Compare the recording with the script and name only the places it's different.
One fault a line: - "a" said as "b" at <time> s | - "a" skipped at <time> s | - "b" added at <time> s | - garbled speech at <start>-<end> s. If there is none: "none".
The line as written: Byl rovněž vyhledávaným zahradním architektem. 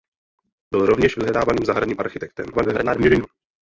- garbled speech at 2.5-3.3 s